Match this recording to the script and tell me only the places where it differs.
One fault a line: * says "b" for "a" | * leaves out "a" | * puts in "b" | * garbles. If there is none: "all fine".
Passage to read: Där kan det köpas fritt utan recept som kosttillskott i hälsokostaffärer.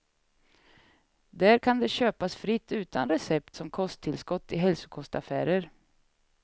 all fine